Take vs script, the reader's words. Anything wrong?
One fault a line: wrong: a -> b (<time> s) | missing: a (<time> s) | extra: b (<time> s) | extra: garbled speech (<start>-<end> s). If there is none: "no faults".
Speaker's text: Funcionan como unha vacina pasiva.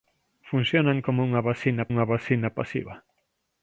extra: unha vacina (1.9 s)